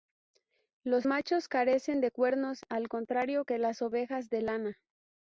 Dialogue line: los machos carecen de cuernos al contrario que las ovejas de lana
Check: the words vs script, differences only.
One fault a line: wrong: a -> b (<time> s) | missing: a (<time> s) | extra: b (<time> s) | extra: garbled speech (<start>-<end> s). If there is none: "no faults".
no faults